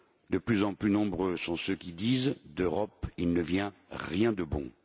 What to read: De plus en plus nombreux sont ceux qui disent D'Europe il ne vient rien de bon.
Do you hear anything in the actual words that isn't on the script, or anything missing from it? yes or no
no